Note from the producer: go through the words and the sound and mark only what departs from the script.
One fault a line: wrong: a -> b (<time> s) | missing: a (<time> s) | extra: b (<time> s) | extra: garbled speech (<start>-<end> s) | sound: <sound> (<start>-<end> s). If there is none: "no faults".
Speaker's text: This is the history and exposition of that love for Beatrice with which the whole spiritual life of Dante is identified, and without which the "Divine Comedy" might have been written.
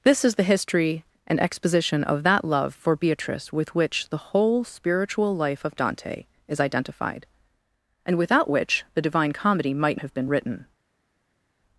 no faults